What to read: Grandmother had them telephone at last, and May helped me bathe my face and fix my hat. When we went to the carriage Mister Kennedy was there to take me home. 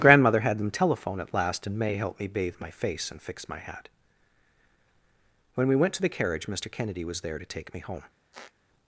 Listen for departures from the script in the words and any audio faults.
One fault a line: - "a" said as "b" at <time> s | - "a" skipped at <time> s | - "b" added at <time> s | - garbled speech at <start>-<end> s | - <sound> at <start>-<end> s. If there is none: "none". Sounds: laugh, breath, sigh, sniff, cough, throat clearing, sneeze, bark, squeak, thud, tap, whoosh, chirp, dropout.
- squeak at 8.3-8.5 s